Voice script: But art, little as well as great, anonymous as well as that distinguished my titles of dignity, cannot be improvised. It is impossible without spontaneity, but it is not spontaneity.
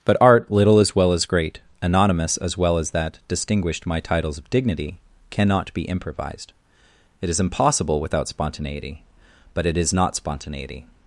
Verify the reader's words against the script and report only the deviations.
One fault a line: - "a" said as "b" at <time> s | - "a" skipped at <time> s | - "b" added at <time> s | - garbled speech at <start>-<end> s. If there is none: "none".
none